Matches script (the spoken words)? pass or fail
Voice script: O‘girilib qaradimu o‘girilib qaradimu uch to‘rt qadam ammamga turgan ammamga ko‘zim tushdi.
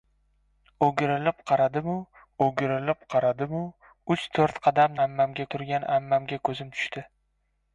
pass